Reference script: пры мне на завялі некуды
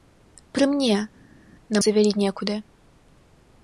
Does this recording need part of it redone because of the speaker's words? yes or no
no